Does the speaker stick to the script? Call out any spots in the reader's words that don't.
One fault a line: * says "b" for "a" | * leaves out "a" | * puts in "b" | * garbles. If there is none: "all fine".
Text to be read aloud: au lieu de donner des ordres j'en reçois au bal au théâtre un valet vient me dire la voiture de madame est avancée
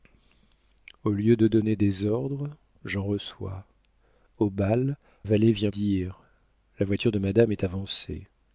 * leaves out "au théâtre un"
* leaves out "me"